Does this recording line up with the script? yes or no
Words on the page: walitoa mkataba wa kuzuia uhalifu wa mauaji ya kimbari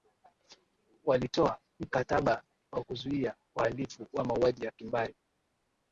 yes